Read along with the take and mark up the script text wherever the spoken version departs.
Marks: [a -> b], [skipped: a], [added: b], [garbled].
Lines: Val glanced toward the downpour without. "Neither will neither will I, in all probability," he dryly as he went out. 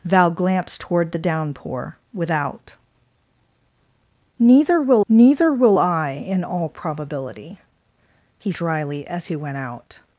Val glanced toward the downpour without. "Neither will neither will I, in all probability," he dryly as he went out.